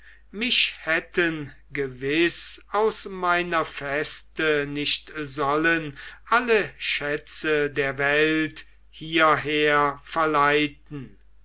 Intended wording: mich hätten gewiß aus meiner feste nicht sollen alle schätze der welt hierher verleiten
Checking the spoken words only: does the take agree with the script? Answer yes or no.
yes